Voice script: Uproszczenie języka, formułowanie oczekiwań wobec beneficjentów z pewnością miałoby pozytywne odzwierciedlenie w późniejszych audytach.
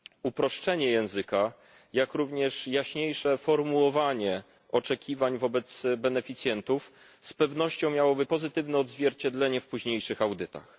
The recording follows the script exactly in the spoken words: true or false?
false